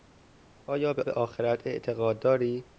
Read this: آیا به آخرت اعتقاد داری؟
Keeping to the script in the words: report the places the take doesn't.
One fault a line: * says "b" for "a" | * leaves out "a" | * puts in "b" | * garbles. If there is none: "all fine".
* puts in "به"